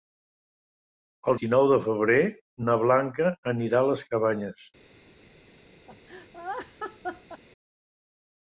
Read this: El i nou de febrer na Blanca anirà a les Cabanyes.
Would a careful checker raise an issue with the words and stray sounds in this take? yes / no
yes